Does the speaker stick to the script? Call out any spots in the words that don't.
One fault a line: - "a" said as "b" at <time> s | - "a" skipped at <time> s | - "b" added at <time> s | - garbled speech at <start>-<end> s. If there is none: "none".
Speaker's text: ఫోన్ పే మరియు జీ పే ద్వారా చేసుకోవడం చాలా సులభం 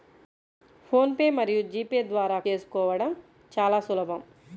none